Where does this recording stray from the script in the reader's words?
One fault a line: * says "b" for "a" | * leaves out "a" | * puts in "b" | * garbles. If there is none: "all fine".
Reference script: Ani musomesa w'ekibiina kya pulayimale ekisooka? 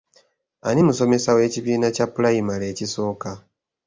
all fine